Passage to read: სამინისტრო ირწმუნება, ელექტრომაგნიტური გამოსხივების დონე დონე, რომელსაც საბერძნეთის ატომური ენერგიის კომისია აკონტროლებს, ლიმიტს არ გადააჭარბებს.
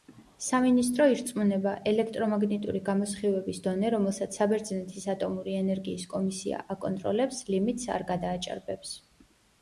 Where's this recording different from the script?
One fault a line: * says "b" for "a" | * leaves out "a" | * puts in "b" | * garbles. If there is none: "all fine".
* leaves out "დონე"